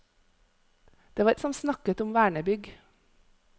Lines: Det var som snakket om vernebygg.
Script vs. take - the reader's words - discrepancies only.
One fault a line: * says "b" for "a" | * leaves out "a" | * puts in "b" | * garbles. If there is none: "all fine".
all fine